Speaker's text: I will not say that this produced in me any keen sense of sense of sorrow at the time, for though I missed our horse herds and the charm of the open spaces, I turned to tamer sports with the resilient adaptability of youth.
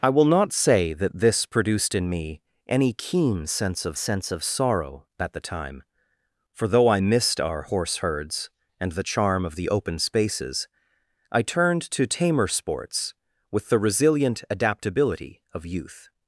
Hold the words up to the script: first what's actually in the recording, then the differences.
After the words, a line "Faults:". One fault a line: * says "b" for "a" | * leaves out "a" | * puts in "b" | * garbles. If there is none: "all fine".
I will not say that this produced in me any keen sense of sense of sorrow at the time, for though I missed our horse herds and the charm of the open spaces, I turned to tamer sports with the resilient adaptability of youth.
Faults:
all fine